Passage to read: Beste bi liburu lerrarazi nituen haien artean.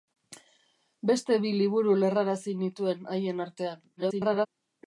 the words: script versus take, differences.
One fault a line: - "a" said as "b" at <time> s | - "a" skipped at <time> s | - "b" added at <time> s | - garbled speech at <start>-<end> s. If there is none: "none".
- garbled speech at 4.0-4.5 s